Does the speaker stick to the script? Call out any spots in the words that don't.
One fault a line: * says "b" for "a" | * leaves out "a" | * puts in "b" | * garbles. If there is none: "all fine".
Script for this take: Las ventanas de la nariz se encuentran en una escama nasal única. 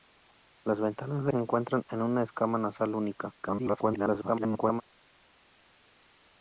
* leaves out "la nariz"
* garbles